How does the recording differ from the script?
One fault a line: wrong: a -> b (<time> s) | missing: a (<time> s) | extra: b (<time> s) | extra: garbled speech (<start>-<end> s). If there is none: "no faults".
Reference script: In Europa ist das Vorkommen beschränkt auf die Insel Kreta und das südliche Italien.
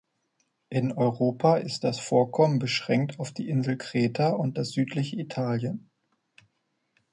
no faults